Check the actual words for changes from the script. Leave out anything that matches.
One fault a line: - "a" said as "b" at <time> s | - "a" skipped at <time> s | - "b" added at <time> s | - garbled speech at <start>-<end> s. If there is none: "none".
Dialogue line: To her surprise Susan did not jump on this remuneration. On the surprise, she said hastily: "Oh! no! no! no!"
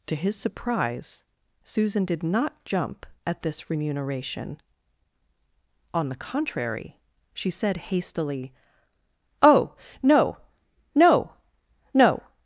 - "her" said as "his" at 0.1 s
- "on" said as "at" at 3.2 s
- "surprise" said as "contrary" at 6.2 s